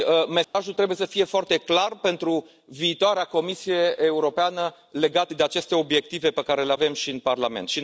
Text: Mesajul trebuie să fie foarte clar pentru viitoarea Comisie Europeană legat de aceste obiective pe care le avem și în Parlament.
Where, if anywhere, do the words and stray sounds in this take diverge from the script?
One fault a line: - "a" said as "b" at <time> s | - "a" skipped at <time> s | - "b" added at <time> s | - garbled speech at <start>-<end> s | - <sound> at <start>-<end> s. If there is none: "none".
- dropout at 0.4-0.5 s